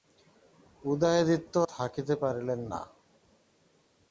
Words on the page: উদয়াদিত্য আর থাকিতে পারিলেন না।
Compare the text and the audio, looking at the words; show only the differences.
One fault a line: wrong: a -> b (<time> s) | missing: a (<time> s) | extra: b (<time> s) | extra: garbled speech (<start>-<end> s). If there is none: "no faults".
missing: আর (1.5 s)